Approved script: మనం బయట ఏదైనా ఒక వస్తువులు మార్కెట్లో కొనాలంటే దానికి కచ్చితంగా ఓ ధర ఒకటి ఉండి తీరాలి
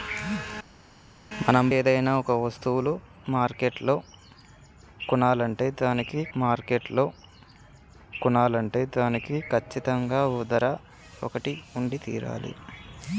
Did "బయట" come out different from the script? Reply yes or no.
yes